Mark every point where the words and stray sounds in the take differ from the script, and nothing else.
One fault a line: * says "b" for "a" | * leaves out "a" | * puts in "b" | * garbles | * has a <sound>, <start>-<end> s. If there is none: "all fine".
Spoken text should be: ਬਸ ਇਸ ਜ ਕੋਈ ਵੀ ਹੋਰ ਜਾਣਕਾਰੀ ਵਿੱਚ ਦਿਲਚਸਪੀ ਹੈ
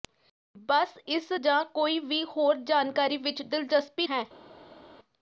all fine